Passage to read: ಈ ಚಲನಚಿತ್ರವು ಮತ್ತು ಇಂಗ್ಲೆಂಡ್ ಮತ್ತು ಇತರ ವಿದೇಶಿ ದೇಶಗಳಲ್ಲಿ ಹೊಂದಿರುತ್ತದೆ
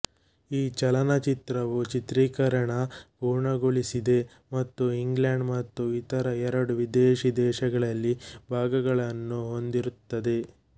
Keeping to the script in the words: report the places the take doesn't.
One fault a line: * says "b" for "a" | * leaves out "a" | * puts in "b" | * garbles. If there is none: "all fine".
* puts in "ಚಿತ್ರೀಕರಣ ಪೂರ್ಣಗೊಳಿಸಿದೆ"
* puts in "ಎರಡು"
* puts in "ಭಾಗಗಳನ್ನು"